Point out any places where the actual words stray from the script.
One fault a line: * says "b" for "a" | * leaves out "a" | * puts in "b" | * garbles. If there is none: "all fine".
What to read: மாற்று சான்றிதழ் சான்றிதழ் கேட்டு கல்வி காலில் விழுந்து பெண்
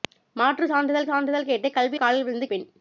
all fine